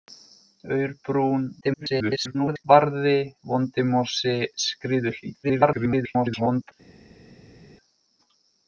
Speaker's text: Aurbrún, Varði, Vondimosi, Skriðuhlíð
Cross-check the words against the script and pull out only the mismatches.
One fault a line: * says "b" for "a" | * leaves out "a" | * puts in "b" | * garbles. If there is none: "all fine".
* garbles
* garbles